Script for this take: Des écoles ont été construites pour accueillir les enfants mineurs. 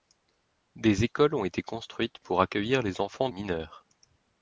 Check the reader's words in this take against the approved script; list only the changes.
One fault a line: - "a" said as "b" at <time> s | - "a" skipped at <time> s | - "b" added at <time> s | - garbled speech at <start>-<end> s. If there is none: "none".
none